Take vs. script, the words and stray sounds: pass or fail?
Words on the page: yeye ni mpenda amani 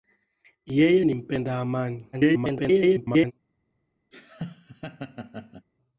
fail